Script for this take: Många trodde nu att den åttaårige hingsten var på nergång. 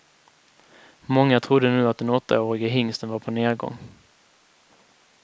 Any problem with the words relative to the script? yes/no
no